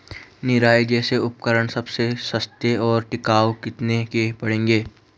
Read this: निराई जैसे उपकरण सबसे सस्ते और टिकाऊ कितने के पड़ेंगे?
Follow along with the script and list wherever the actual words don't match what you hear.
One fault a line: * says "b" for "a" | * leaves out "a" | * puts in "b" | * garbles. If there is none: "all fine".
all fine